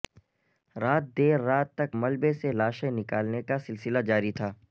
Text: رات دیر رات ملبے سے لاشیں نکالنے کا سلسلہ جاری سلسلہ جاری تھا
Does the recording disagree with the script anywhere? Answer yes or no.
yes